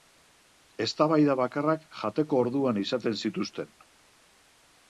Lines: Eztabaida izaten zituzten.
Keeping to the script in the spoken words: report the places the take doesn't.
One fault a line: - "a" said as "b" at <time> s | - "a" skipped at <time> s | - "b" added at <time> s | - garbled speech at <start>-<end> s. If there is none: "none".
- "bakarrak jateko orduan" added at 1.4 s